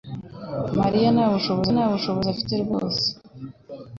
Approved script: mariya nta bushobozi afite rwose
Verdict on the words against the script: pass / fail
fail